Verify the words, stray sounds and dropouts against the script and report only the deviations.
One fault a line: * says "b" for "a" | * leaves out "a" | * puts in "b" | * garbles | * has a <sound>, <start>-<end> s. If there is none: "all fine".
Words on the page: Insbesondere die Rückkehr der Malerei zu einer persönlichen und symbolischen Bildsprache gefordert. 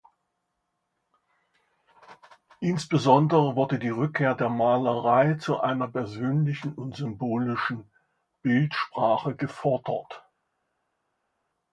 * puts in "wurde"